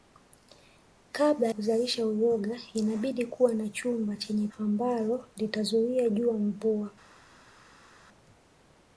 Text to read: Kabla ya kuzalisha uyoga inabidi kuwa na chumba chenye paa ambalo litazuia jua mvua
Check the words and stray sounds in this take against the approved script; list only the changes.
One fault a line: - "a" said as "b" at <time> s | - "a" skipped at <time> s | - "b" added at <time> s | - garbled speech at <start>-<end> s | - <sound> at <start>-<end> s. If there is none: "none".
- "ya" skipped at 1.5 s
- "paa" skipped at 4.5 s